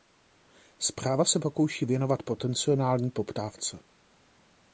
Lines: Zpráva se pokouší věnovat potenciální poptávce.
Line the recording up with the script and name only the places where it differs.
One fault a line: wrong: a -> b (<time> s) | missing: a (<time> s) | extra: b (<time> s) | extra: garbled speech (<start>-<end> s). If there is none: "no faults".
no faults